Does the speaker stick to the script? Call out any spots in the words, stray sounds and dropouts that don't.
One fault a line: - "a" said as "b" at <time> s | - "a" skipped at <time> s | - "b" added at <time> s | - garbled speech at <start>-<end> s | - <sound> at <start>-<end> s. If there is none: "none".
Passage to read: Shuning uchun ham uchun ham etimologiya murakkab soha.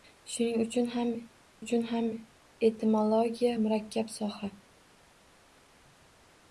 none